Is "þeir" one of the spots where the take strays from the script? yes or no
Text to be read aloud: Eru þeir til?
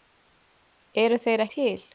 no